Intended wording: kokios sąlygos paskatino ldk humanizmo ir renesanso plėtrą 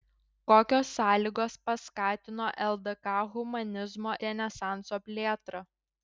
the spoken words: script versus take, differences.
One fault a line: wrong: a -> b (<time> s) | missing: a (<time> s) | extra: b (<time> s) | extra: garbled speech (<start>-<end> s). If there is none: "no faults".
missing: ir (4.2 s)